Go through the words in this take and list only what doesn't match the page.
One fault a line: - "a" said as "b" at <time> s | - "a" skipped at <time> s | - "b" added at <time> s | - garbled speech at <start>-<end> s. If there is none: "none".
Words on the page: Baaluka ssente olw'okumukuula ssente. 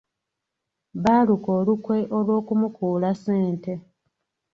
- "ssente" said as "olukwe" at 1.6 s